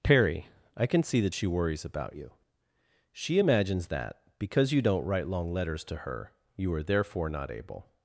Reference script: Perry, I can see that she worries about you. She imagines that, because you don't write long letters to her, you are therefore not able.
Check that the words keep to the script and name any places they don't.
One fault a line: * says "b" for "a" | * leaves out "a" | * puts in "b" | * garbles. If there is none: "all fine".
all fine